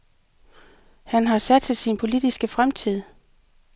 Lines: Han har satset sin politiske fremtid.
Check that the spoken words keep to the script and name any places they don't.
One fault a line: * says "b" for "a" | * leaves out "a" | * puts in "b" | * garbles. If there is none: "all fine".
all fine